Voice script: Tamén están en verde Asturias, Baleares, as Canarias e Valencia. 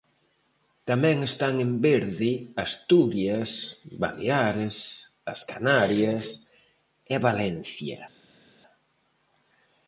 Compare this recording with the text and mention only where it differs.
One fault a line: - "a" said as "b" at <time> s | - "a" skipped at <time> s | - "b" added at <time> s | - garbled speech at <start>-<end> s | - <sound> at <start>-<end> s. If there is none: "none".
none